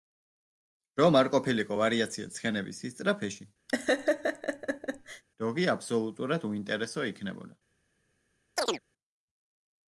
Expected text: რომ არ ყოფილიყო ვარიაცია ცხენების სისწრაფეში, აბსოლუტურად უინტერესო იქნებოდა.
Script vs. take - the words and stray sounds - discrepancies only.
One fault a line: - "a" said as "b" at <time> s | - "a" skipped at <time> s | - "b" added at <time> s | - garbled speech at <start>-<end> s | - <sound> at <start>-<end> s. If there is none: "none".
- laugh at 3.7-5.2 s
- "დოღი" added at 5.4 s
- chirp at 8.6-8.8 s